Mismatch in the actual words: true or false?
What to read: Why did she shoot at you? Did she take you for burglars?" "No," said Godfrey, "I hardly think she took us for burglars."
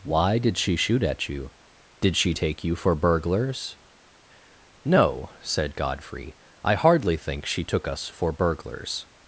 false